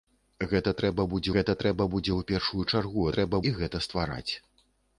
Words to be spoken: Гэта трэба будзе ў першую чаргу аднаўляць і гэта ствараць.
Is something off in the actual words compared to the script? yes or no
yes